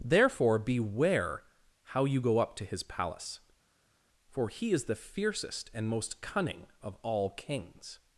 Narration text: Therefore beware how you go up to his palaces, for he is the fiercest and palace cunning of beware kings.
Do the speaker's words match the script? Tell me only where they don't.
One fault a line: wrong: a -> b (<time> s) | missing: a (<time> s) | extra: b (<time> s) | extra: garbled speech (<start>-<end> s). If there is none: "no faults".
wrong: palaces -> palace (2.8 s)
wrong: palace -> most (5.9 s)
wrong: beware -> all (7.0 s)